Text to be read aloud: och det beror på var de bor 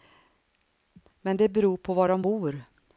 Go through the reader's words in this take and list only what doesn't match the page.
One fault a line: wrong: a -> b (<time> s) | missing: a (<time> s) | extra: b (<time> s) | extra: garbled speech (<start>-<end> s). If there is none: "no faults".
wrong: och -> men (1.2 s)